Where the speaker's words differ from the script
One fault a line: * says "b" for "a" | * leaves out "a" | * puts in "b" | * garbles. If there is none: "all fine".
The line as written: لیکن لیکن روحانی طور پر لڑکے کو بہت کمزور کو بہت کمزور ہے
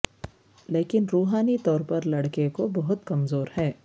* leaves out "لیکن"
* leaves out "کو بہت کمزور"